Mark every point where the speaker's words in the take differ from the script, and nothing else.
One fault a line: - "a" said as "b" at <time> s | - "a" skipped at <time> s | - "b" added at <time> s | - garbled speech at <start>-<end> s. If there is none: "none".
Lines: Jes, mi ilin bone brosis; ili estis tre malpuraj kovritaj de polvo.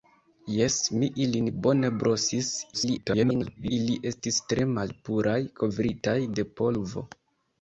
- garbled speech at 2.7-3.7 s